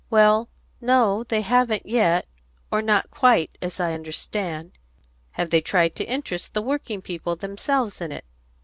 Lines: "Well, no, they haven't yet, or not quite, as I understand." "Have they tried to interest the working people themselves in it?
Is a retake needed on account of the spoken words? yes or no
no